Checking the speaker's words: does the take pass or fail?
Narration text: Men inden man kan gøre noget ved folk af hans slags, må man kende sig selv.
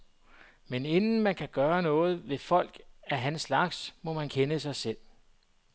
pass